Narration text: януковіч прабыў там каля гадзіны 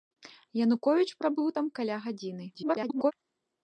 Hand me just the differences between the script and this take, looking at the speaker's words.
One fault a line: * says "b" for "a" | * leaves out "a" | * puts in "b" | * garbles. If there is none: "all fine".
* garbles